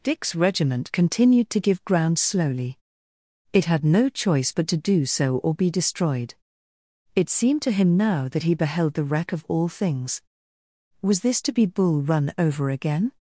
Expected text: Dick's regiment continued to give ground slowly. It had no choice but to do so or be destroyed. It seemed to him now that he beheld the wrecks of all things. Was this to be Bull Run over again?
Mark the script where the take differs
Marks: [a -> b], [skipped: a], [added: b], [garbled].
Dick's regiment continued to give ground slowly. It had no choice but to do so or be destroyed. It seemed to him now that he beheld the [wrecks -> wreck] of all things. Was this to be Bull Run over again?